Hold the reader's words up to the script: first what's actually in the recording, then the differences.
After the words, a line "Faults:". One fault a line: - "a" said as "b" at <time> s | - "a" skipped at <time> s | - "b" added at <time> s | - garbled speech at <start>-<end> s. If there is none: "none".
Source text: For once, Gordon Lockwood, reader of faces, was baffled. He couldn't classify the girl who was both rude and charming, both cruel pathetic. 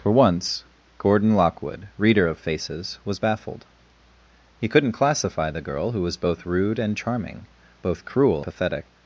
For once, Gordon Lockwood, reader of faces, was baffled. He couldn't classify the girl who was both rude and charming, both cruel pathetic.
Faults:
none